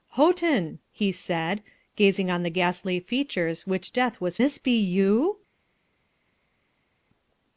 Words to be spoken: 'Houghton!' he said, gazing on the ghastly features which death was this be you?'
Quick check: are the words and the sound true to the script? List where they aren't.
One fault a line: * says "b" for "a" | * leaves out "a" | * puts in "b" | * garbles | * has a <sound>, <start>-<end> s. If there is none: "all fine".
all fine